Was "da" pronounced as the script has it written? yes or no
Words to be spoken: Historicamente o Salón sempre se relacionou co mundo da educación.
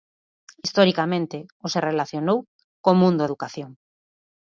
no